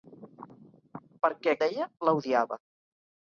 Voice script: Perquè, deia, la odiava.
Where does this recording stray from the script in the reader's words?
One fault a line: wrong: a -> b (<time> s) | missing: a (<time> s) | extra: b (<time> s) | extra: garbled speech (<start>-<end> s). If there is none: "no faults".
no faults